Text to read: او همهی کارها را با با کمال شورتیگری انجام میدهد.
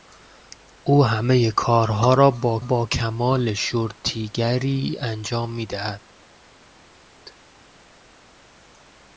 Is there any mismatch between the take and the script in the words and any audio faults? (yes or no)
no